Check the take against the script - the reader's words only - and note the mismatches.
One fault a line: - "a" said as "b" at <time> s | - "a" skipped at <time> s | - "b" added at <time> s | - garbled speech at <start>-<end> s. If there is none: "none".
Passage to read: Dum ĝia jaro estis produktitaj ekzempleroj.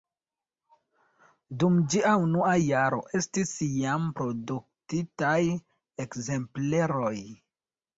- "unua" added at 2.2 s
- "jam" added at 3.8 s